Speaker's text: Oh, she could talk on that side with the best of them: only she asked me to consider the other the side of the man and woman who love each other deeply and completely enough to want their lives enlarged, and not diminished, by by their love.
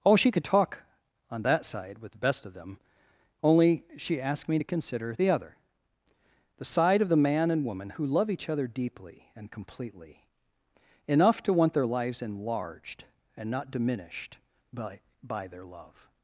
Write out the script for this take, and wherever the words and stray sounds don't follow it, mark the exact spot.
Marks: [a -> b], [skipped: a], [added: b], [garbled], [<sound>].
Oh, she could talk on that side with the best of them: only she asked me to consider the other the side of the man and woman who love each other deeply and completely enough to want their lives enlarged, and not diminished, by by their love.